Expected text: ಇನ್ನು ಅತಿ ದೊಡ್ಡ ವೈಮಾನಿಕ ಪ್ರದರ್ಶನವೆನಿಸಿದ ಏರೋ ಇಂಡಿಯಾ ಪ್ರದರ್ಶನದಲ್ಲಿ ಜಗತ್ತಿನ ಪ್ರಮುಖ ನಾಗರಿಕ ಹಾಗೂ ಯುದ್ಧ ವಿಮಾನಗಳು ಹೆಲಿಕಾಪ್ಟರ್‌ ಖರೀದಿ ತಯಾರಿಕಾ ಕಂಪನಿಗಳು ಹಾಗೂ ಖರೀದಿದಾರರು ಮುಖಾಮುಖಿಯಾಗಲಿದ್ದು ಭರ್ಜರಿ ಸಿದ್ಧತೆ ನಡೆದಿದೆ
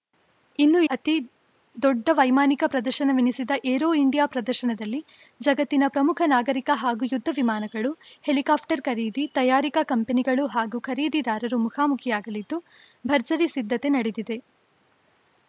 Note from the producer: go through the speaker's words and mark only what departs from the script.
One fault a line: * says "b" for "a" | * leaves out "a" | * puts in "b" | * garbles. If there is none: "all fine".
all fine